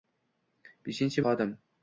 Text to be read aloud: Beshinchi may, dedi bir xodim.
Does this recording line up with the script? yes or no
no